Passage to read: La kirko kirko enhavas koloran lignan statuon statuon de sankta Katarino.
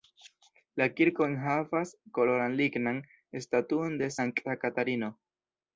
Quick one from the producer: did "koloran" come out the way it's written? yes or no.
yes